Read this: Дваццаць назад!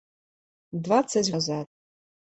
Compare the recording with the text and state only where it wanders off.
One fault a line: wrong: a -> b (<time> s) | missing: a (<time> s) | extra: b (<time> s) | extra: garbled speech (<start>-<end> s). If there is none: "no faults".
no faults